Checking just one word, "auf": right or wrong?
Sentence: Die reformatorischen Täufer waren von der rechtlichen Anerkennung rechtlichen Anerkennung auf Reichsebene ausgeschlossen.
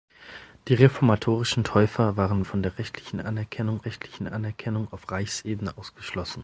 right